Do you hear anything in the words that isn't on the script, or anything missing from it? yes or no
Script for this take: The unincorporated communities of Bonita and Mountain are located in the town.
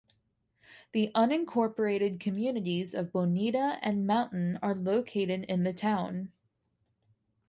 no